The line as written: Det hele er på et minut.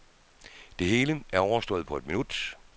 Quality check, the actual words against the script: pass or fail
fail